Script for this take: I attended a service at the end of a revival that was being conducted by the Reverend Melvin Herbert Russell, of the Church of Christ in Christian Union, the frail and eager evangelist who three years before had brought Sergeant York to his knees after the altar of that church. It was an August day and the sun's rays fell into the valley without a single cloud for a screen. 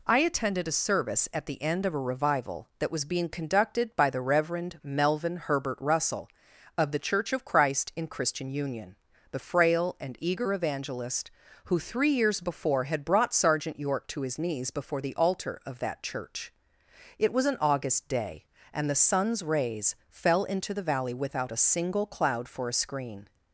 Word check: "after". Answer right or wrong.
wrong